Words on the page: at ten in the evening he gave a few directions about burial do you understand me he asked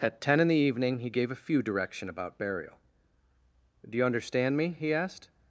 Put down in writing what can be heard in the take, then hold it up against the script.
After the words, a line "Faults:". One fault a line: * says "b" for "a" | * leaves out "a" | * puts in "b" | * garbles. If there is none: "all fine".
at ten in the evening he gave a few direction about burial do you understand me he asked
Faults:
* says "direction" for "directions"